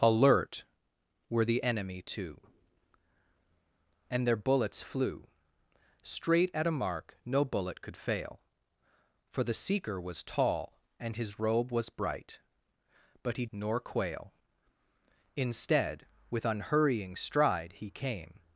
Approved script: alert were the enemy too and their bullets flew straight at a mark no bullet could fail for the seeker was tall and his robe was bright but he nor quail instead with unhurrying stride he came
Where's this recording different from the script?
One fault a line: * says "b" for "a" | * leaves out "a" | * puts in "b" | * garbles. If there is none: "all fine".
all fine